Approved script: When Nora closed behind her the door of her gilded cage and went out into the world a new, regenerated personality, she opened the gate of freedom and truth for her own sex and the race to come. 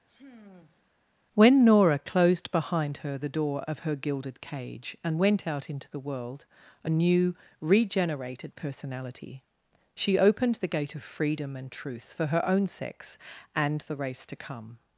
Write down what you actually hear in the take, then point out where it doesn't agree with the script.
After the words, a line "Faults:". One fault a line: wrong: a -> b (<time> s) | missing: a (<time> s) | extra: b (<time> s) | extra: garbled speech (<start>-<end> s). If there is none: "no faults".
When Nora closed behind her the door of her gilded cage and went out into the world a new, regenerated personality, she opened the gate of freedom and truth for her own sex and the race to come.
Faults:
no faults